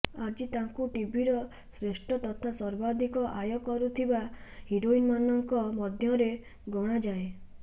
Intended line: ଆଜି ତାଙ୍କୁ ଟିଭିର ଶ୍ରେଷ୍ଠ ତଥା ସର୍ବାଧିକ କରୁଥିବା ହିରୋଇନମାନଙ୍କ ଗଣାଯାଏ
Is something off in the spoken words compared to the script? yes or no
yes